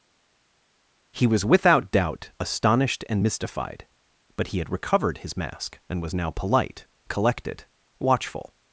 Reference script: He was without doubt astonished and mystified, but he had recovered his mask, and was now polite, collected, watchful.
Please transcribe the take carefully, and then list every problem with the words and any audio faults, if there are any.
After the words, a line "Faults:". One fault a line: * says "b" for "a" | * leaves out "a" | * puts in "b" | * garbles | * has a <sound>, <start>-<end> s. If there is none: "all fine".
He was without doubt astonished and mystified, but he had recovered his mask, and was now polite, collected, watchful.
Faults:
all fine